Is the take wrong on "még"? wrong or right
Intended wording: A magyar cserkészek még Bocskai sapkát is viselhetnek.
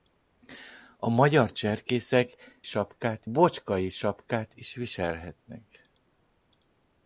wrong